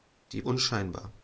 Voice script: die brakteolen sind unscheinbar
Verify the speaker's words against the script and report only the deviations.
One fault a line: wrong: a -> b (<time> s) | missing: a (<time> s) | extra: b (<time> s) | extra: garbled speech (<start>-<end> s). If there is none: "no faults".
missing: brakteolen sind (0.4 s)